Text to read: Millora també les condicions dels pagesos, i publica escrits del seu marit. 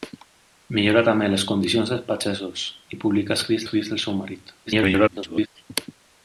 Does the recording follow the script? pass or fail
fail